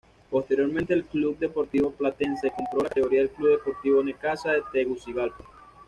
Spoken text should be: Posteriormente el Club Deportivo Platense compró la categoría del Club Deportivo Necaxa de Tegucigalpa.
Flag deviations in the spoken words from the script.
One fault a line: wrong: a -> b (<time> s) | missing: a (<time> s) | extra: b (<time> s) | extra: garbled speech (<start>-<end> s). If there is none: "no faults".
no faults